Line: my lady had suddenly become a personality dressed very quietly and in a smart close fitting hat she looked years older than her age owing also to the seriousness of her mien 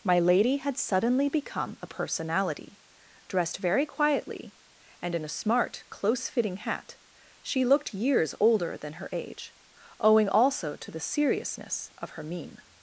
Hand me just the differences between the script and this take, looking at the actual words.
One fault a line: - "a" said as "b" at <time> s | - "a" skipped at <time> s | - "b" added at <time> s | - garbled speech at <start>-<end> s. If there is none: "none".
none